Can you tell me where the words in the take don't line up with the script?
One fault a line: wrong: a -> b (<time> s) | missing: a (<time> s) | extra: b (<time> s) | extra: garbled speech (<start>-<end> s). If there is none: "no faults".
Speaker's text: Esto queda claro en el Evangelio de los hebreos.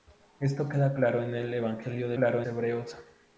wrong: los -> claro (2.1 s)